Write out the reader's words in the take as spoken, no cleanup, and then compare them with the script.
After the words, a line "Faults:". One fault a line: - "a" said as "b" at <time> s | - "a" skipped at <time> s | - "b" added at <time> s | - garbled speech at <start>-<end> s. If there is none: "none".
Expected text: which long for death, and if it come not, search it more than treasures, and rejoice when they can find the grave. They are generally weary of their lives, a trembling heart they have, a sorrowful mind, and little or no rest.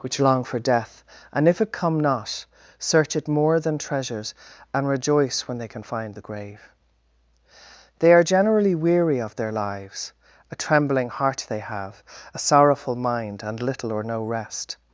which long for death, and if it come not, search it more than treasures, and rejoice when they can find the grave. They are generally weary of their lives, a trembling heart they have, a sorrowful mind, and little or no rest.
Faults:
none